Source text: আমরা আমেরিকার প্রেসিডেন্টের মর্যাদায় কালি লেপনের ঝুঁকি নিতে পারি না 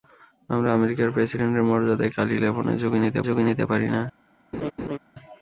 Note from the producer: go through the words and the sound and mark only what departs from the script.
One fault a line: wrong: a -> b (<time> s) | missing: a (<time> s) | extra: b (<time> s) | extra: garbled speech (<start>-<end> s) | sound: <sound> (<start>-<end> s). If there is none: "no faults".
extra: ঝুঁকি নিতে (3.3 s)
sound: laugh (4.5-5.0 s)